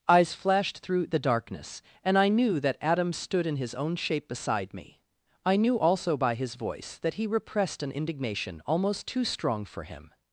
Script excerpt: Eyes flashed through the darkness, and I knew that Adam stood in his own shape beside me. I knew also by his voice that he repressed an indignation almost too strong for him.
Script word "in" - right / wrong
right